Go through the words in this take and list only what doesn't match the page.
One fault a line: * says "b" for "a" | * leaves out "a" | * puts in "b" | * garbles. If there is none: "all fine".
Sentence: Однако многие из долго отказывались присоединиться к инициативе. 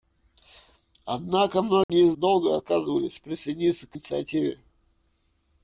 all fine